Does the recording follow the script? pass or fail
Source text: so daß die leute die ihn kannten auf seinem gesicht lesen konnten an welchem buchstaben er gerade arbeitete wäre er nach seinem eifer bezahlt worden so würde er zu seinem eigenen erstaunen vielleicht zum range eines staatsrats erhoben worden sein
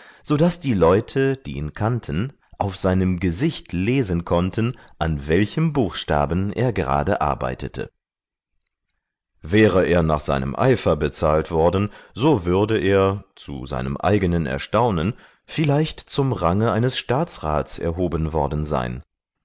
pass